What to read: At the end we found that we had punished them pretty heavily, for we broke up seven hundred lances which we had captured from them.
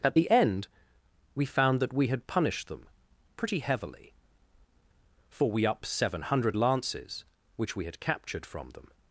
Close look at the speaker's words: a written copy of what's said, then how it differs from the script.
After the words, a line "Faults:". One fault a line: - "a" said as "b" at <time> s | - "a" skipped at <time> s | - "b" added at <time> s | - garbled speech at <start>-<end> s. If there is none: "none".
At the end we found that we had punished them pretty heavily, for we up seven hundred lances which we had captured from them.
Faults:
- "broke" skipped at 5.7 s